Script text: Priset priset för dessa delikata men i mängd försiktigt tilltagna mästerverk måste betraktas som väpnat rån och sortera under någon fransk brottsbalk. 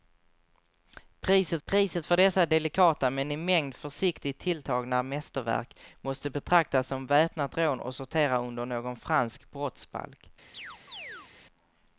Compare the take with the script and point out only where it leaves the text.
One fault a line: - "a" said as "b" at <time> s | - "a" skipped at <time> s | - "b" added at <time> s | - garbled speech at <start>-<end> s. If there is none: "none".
none